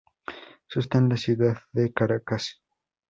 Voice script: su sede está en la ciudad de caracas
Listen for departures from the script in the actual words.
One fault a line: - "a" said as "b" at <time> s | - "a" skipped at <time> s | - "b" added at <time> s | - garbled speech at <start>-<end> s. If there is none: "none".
- "sede" skipped at 0.8 s